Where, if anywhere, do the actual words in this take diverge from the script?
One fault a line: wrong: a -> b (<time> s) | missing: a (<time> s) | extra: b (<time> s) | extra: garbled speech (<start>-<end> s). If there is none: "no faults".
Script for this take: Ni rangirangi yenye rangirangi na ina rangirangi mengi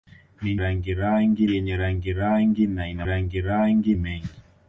no faults